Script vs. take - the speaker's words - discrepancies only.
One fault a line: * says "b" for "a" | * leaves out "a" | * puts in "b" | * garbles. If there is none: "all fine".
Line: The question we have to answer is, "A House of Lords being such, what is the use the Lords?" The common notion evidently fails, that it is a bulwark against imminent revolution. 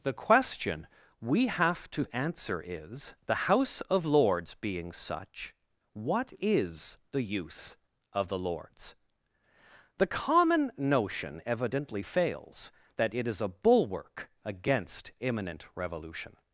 * says "The" for "A"
* puts in "of"